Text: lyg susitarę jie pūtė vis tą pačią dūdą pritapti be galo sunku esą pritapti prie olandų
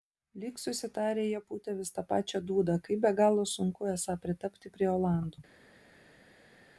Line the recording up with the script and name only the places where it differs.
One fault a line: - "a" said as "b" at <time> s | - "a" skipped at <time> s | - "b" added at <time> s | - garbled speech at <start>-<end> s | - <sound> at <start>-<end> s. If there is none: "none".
- "pritapti" said as "kaip" at 2.9 s